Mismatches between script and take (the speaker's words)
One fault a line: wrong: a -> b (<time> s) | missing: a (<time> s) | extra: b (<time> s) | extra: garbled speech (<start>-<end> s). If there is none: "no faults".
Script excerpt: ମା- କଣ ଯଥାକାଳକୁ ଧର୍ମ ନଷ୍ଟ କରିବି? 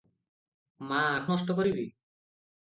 missing: କଣ ଯଥାକାଳକୁ ଧର୍ମ (1.2 s)